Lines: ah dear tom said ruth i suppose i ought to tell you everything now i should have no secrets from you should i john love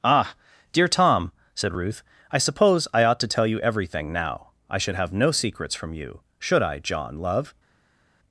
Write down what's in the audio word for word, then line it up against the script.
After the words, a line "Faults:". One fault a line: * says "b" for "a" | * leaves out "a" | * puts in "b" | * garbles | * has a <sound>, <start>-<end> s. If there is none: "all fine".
ah dear tom said ruth i suppose i ought to tell you everything now i should have no secrets from you should i john love
Faults:
all fine